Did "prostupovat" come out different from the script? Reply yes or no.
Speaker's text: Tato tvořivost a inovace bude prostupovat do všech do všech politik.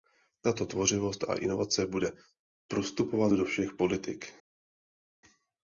no